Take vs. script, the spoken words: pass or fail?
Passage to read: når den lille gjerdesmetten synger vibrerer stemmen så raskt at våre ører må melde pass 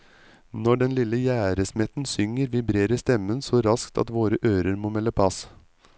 pass